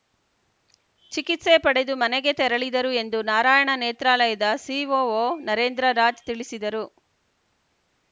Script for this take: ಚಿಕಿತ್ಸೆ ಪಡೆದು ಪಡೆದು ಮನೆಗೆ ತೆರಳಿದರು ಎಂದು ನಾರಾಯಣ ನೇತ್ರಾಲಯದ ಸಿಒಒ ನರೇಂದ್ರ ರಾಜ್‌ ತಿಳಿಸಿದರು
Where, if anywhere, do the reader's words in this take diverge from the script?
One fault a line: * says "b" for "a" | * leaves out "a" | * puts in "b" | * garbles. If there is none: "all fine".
* leaves out "ಪಡೆದು"